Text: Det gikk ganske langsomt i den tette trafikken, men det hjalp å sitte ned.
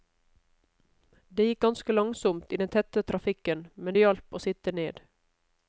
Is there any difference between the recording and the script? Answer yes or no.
no